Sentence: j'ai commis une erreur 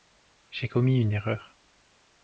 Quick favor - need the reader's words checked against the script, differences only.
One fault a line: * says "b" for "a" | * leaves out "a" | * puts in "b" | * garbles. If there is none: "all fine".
all fine